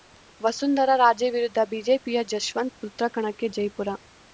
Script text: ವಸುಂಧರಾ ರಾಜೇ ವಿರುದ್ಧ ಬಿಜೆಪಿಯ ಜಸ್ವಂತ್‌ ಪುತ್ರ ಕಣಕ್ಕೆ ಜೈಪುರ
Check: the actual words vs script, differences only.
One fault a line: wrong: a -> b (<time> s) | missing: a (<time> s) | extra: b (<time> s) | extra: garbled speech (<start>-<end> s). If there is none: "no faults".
no faults